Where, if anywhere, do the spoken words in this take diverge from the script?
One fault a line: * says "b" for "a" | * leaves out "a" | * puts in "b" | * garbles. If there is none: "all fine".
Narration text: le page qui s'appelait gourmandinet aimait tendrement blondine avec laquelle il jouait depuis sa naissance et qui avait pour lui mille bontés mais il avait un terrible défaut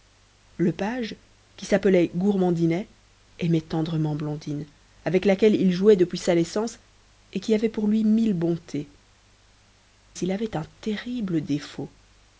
* leaves out "mais"